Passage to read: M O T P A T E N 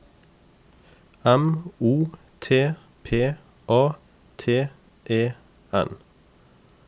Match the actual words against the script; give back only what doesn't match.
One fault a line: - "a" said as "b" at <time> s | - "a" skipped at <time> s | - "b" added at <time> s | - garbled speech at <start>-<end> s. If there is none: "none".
none